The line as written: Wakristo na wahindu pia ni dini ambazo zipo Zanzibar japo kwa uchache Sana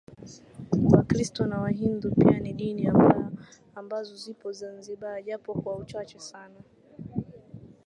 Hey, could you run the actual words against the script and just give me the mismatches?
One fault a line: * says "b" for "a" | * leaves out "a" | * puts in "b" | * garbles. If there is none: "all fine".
all fine